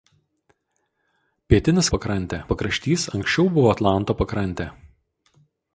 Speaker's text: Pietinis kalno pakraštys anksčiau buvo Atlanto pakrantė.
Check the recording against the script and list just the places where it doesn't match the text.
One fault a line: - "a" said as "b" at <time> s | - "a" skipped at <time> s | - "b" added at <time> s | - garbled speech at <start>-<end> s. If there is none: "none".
- "kalno" said as "pakrantė" at 2.0 s